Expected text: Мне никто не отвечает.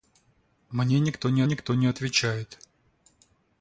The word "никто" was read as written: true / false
true